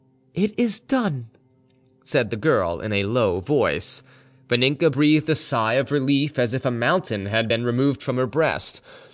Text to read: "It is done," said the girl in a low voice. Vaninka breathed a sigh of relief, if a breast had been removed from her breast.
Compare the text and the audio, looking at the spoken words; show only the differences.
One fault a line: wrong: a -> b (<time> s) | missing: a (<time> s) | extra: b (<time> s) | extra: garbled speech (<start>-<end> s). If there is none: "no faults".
extra: as (6.4 s)
wrong: breast -> mountain (6.7 s)